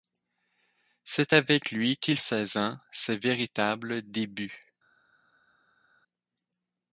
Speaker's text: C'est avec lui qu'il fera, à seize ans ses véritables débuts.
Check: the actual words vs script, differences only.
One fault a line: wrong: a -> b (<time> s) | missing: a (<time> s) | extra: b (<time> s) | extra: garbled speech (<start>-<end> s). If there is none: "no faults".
missing: fera à (2.2 s)